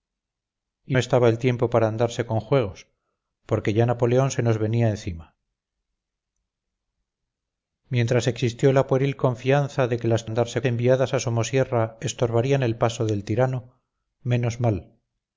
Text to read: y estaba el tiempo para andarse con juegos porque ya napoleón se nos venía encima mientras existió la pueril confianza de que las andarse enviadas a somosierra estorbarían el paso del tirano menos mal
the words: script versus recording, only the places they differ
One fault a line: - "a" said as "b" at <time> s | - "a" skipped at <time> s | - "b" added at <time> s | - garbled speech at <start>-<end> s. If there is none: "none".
none